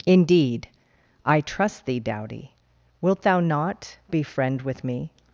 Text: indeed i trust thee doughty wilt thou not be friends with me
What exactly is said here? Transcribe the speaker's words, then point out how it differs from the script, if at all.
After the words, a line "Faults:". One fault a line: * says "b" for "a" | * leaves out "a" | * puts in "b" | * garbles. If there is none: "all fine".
indeed i trust thee doughty wilt thou not be friend with me
Faults:
* says "friend" for "friends"